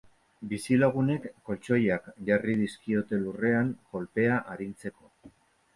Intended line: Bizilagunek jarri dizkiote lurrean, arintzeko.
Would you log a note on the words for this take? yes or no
yes